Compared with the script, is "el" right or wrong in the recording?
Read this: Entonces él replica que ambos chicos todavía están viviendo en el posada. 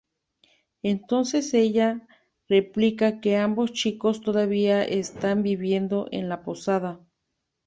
wrong